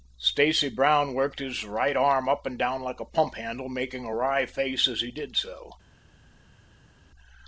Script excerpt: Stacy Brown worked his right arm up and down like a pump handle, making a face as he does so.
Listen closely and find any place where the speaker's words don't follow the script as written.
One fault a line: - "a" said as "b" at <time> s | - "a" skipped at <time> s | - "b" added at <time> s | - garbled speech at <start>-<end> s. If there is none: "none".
- "wry" added at 4.1 s
- "does" said as "did" at 5.1 s